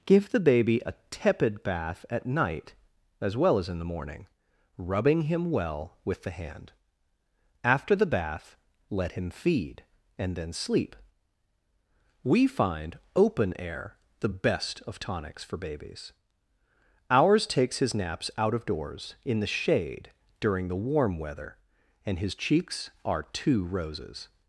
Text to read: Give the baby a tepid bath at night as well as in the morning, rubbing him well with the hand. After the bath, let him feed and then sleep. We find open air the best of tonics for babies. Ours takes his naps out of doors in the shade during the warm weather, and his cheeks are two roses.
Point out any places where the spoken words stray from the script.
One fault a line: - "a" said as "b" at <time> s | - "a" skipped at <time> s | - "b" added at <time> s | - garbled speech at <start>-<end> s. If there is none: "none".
none